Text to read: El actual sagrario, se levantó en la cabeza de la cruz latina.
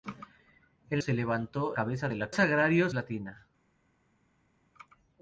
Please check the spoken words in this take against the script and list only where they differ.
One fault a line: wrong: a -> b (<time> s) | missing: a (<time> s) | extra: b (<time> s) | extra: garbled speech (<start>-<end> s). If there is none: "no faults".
missing: actual sagrario (1.0 s)
missing: en la (1.8 s)
wrong: cruz -> sagrario (2.3 s)